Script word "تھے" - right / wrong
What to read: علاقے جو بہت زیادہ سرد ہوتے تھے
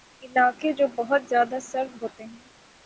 wrong